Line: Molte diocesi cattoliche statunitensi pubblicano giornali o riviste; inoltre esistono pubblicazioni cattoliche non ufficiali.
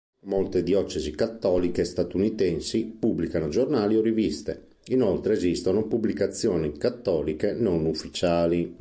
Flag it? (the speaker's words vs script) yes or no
no